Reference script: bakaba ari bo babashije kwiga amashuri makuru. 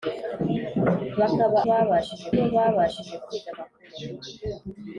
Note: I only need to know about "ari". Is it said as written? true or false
false